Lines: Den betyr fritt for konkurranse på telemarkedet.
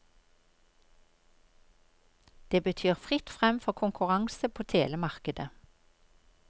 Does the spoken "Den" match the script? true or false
false